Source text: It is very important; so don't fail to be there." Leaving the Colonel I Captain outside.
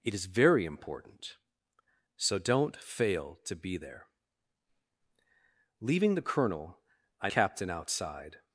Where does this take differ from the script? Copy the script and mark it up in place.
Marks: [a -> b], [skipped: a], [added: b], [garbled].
It is very important; so don't fail to be there." Leaving the Colonel I Captain outside.